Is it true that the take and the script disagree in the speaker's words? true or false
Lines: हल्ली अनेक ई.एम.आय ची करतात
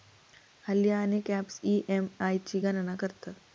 true